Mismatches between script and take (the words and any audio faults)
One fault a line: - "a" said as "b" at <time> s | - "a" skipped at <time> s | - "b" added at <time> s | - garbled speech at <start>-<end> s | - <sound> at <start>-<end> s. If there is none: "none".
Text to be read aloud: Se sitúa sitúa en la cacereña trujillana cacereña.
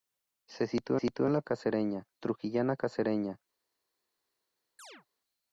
- chirp at 4.8-5.1 s